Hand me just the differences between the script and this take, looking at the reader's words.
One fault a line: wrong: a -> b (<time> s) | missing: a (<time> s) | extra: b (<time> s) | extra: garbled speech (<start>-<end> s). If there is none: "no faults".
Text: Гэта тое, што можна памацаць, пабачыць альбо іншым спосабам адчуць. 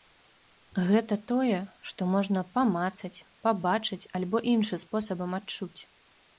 no faults